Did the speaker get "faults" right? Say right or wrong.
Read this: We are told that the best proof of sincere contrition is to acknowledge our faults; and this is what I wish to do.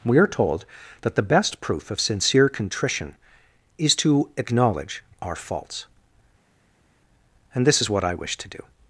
right